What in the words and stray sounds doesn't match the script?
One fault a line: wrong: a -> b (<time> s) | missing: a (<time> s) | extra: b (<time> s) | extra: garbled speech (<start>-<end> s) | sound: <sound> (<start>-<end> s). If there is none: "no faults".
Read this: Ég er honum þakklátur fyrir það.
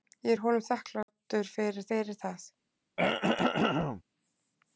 sound: dropout (1.0-1.1 s)
extra: fyrir (1.9 s)
sound: throat clearing (3.0-4.0 s)